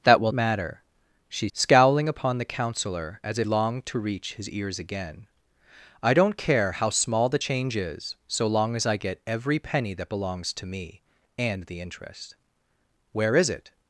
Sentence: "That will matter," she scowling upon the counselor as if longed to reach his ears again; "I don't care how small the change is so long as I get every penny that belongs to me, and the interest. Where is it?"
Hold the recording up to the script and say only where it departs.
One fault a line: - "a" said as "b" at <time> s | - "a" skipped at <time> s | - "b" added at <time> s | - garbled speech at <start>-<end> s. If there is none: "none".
none